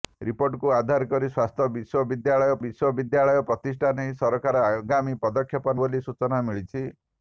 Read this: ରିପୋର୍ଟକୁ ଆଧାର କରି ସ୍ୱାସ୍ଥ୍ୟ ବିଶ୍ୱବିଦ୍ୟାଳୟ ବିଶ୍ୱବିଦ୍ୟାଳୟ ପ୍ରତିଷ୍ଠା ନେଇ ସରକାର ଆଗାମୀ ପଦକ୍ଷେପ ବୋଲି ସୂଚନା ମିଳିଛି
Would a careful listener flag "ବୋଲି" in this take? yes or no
no